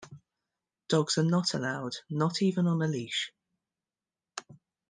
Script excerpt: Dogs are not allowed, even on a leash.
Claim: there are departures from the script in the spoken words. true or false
true